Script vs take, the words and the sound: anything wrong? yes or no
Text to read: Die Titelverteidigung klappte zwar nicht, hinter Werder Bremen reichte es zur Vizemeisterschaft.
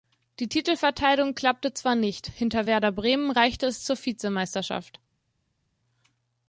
no